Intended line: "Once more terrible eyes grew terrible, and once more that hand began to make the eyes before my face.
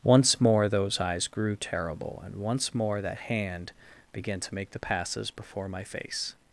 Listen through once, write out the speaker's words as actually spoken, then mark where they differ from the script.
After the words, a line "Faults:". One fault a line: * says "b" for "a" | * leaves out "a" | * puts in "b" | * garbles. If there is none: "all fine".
"Once more those eyes grew terrible, and once more that hand began to make the passes before my face.
Faults:
* says "those" for "terrible"
* says "passes" for "eyes"